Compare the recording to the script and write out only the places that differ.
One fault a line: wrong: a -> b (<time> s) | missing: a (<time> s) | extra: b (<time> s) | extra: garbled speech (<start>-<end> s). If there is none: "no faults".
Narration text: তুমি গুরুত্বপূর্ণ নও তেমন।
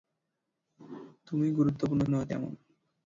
no faults